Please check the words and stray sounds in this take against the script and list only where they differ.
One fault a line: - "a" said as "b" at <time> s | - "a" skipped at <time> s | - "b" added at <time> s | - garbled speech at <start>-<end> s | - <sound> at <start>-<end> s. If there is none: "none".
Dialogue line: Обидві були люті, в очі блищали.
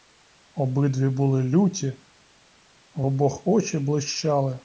- "обох" added at 3.0 s